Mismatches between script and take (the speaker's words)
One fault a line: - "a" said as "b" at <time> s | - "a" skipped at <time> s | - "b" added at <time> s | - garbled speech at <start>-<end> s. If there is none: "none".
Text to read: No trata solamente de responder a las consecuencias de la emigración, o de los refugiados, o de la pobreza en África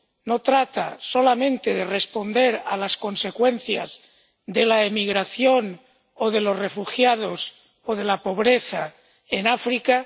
none